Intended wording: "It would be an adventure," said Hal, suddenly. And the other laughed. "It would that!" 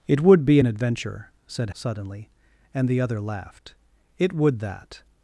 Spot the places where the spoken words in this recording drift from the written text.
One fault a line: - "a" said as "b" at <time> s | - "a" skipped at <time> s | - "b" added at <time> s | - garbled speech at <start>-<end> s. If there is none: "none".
- "Hal" skipped at 1.7 s